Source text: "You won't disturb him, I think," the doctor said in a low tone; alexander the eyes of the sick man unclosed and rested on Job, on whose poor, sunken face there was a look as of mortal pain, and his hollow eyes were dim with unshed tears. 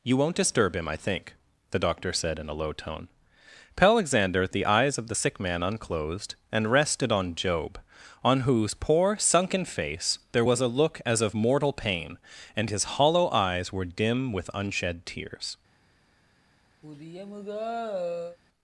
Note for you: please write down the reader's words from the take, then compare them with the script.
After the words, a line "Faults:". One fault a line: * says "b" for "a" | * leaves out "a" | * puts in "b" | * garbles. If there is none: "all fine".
"You won't disturb him, I think," the doctor said in a low tone; alexander the eyes of the sick man unclosed and rested on Job, on whose poor, sunken face there was a look as of mortal pain, and his hollow eyes were dim with unshed tears.
Faults:
all fine